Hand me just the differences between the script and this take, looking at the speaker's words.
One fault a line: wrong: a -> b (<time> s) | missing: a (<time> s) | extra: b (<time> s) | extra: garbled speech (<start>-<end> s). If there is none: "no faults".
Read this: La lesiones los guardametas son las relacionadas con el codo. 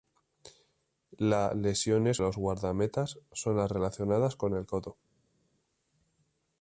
no faults